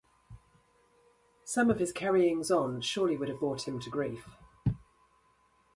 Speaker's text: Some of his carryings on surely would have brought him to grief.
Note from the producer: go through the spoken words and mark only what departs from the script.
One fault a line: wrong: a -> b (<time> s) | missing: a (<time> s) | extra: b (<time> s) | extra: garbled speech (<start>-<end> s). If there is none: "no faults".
no faults